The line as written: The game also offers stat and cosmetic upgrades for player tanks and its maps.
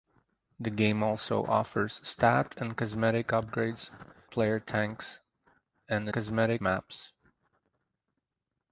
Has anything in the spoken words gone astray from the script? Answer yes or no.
yes